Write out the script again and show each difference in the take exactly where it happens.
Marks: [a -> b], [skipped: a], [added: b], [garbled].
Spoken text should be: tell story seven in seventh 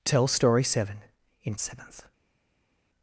tell story seven in seventh